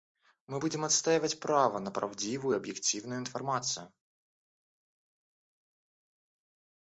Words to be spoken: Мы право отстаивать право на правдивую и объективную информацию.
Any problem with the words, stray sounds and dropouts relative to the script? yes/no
yes